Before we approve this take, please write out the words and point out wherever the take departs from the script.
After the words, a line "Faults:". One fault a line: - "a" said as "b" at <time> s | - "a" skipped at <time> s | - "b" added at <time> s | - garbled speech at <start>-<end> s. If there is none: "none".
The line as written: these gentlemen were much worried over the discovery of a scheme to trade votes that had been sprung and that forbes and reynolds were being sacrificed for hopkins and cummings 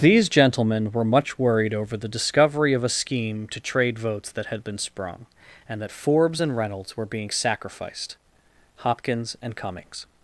these gentlemen were much worried over the discovery of a scheme to trade votes that had been sprung and that forbes and reynolds were being sacrificed hopkins and cummings
Faults:
- "for" skipped at 8.2 s